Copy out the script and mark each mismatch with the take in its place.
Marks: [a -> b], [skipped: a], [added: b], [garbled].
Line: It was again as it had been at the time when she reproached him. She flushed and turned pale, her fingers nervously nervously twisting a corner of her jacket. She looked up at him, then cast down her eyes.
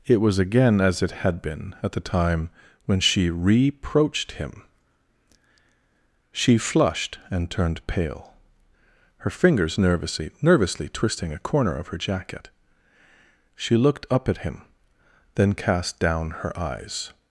It was again as it had been at the time when she reproached him. She flushed and turned pale, her fingers nervously nervously twisting a corner of her jacket. She looked up at him, then cast down her eyes.